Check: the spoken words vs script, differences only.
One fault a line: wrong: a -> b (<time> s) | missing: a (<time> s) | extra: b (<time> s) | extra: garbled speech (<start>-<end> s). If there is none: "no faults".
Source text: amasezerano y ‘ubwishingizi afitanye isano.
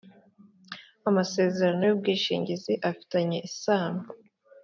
no faults